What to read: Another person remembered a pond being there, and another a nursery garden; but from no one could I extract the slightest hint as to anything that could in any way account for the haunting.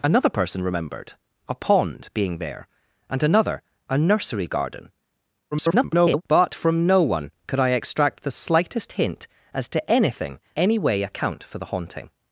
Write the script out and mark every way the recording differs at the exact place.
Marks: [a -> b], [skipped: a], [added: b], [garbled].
Another person remembered a pond being there, and another a nursery garden; [garbled] but from no one could I extract the slightest hint as to anything [skipped: that could in] any way account for the haunting.